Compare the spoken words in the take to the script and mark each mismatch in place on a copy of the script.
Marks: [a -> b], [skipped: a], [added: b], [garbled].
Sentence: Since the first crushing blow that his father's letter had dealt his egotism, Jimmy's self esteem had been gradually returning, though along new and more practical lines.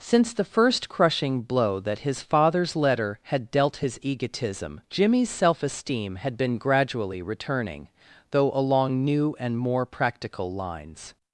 Since the first crushing blow that his father's letter had dealt his egotism, Jimmy's self esteem had been gradually returning, though along new and more practical lines.